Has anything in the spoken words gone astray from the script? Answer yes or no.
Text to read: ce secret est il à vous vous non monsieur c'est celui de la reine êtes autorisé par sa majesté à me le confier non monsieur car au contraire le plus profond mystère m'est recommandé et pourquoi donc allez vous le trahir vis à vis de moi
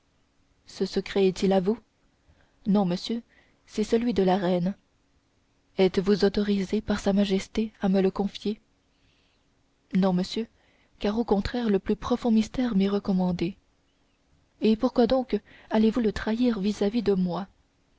yes